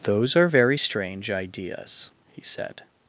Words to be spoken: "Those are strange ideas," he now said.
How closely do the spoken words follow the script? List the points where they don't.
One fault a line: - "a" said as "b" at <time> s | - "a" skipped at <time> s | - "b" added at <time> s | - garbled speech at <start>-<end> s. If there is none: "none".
- "very" added at 0.4 s
- "now" skipped at 2.4 s